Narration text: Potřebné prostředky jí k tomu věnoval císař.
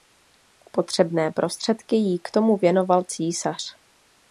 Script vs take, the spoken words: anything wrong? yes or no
no